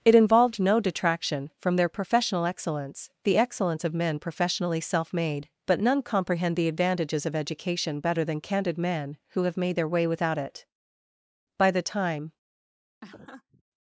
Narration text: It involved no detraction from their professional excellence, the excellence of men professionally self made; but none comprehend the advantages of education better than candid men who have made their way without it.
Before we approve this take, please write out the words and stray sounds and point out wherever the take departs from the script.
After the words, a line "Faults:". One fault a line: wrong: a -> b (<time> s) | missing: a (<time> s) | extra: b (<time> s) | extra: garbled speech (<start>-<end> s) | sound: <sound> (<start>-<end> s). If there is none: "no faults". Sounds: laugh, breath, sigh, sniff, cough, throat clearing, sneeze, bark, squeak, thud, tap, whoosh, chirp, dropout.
It involved no detraction from their professional excellence, the excellence of men professionally self made; but none comprehend the advantages of education better than candid men who have made their way without it. By the time
Faults:
extra: By the time (11.6 s)
sound: laugh (13.0-13.6 s)